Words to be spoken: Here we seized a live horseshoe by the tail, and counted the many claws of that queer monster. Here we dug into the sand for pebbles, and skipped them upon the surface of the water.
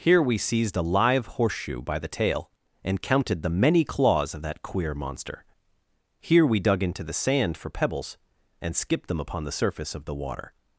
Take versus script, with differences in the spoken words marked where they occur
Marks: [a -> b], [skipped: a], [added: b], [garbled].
Here we seized a live horseshoe by the tail, and counted the many claws of that queer monster. Here we dug into the sand for pebbles, and skipped them upon the surface of the water.